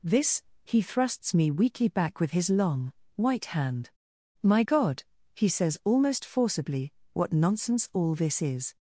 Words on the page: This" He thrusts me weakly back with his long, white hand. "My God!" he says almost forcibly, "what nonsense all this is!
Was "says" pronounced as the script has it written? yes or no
yes